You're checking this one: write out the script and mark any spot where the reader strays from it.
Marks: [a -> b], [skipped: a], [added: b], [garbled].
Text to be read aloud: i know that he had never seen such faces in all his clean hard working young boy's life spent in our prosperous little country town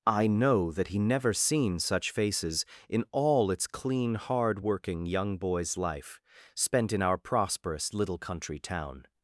i know that he [skipped: had] never seen such faces in all [his -> its] clean hard working young boy's life spent in our prosperous little country town